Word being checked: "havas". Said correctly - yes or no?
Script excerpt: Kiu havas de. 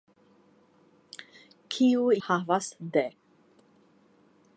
yes